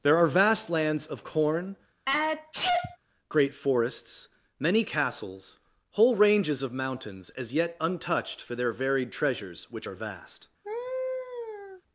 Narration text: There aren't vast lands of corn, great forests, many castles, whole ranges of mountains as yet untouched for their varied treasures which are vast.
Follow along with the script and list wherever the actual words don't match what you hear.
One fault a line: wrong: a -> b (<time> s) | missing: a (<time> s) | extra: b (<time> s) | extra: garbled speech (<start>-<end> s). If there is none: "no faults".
wrong: aren't -> are (0.2 s)